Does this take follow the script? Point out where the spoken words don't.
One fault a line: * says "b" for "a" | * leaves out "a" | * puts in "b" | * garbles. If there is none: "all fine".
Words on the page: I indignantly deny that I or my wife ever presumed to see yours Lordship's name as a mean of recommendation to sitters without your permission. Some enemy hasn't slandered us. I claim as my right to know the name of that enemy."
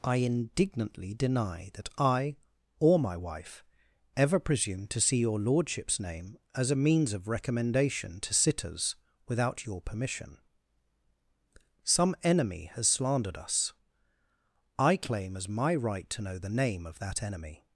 * says "your" for "yours"
* says "means" for "mean"
* says "has" for "hasn't"